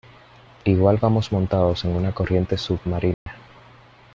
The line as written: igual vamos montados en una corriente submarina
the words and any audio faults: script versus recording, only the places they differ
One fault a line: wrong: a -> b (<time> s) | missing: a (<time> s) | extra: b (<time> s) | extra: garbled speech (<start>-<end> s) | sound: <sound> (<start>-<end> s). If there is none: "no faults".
sound: dropout (3.1-3.3 s)